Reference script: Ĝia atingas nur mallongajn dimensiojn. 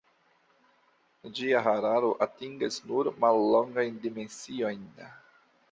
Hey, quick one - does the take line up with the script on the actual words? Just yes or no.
no